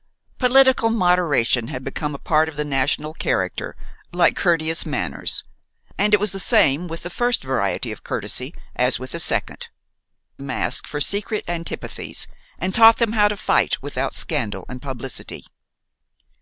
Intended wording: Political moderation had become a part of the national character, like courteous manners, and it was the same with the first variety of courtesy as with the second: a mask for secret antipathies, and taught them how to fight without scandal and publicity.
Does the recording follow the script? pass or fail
pass